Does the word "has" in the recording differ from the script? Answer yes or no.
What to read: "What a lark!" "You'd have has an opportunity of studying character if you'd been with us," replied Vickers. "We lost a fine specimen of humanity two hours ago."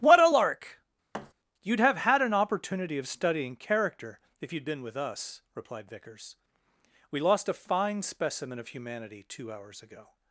yes